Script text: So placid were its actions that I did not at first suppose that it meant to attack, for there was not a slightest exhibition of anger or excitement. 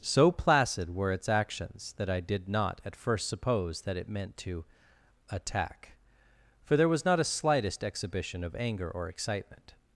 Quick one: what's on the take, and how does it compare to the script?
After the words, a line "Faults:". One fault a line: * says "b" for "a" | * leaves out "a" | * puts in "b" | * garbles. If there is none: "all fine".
So placid were its actions that I did not at first suppose that it meant to attack, for there was not a slightest exhibition of anger or excitement.
Faults:
all fine